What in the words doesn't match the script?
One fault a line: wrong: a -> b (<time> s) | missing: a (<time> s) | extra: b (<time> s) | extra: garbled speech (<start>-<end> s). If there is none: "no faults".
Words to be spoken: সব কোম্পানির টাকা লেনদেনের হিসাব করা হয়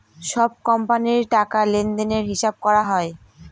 no faults